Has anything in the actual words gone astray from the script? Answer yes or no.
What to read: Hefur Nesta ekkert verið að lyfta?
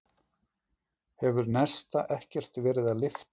no